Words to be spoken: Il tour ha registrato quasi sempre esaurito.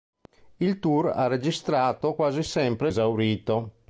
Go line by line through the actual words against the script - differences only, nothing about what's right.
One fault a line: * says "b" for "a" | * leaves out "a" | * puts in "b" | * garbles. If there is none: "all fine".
all fine